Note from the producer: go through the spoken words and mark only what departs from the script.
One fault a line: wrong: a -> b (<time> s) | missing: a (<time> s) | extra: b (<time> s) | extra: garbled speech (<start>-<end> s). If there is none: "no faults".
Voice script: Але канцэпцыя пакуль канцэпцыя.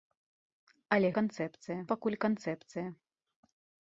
no faults